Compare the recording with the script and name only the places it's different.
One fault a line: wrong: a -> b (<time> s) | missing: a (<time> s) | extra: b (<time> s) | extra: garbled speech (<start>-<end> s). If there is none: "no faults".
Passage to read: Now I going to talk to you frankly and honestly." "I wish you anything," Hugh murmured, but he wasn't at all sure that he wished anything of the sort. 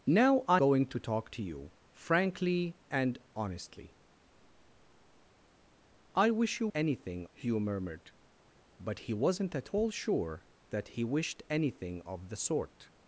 no faults